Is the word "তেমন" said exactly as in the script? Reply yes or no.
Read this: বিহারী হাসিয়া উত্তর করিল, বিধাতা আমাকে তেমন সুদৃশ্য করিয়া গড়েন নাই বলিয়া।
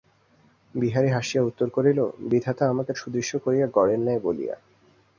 no